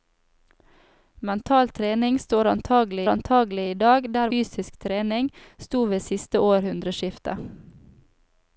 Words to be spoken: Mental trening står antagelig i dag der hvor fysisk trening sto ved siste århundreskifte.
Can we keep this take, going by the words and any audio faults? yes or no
no